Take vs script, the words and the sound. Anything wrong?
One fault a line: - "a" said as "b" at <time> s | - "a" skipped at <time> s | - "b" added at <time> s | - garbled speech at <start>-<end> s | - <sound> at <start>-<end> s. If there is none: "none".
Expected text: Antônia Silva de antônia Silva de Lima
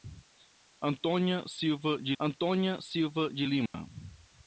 - dropout at 3.7-3.7 s